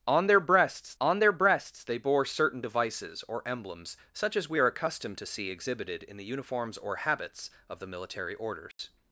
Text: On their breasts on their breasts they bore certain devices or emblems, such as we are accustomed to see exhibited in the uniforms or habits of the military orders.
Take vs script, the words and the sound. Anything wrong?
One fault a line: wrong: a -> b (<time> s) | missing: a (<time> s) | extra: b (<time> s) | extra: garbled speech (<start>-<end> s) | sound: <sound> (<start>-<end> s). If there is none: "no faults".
sound: dropout (8.7-8.8 s)